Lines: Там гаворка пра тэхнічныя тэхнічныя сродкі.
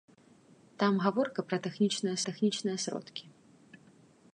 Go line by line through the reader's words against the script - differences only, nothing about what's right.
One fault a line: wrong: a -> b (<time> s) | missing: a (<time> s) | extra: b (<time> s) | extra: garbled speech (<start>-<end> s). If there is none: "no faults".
no faults